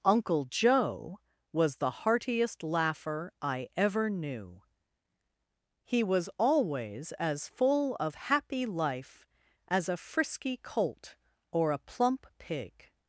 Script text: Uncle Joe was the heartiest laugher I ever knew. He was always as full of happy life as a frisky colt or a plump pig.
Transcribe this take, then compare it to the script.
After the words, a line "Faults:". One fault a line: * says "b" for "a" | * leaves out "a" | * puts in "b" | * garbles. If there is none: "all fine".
Uncle Joe was the heartiest laugher I ever knew. He was always as full of happy life as a frisky colt or a plump pig.
Faults:
all fine